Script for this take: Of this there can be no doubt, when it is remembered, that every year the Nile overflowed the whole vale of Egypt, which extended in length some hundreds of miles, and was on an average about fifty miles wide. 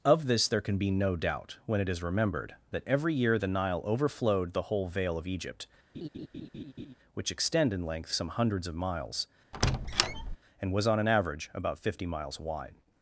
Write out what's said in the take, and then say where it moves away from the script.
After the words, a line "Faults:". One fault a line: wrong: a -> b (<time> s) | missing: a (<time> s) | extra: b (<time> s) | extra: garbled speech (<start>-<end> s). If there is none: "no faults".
Of this there can be no doubt, when it is remembered, that every year the Nile overflowed the whole vale of Egypt, which extend in length some hundreds of miles, and was on an average about fifty miles wide.
Faults:
wrong: extended -> extend (7.3 s)